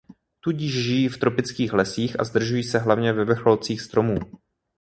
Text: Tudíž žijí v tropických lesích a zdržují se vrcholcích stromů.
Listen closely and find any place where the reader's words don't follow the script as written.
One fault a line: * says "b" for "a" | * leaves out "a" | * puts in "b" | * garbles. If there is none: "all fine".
* puts in "hlavně ve"